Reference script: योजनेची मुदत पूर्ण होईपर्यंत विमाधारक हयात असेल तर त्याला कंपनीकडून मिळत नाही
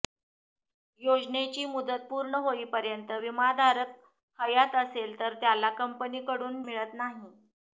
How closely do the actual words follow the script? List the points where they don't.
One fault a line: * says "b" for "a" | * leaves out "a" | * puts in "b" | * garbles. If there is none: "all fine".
all fine